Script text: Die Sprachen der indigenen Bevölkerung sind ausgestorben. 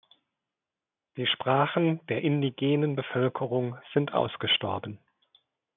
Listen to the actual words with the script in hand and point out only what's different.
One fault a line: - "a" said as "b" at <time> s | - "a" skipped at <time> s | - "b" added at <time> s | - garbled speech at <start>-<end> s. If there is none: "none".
none